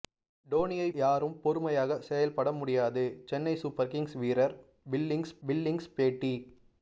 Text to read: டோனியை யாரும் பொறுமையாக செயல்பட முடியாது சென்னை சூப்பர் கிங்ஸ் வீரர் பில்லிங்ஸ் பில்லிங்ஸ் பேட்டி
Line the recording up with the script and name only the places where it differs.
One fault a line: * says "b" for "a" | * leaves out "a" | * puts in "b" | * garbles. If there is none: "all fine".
all fine